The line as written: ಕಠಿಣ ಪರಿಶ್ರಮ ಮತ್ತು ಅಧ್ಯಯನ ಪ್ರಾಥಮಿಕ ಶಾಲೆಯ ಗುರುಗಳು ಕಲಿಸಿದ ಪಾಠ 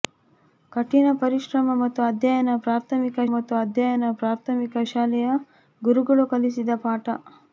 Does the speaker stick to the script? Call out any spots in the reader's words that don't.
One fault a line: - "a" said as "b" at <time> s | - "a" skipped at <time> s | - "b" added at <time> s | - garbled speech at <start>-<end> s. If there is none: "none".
- "ಮತ್ತು ಅಧ್ಯಯನ ಪ್ರಾಥಮಿಕ" added at 3.3 s